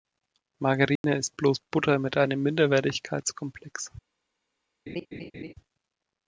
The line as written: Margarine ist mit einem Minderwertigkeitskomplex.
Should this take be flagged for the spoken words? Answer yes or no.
yes